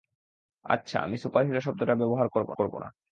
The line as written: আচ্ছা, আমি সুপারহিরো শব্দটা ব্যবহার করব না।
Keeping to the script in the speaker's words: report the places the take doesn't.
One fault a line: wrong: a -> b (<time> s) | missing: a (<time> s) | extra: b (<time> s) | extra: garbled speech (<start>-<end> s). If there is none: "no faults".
extra: করব (2.5 s)